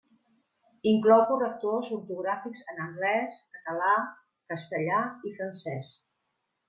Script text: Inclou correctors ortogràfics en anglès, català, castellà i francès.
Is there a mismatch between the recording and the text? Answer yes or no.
no